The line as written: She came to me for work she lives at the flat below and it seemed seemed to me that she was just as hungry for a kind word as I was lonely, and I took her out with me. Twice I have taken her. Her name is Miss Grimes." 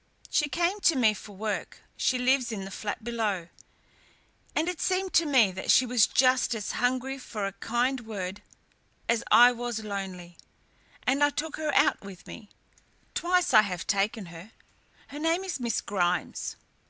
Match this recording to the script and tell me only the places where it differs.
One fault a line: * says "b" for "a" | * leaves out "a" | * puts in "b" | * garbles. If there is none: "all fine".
* says "in" for "at"
* leaves out "seemed"